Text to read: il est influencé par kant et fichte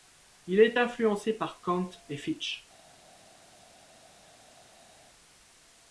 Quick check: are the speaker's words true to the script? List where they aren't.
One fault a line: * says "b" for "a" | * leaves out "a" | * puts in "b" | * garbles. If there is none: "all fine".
all fine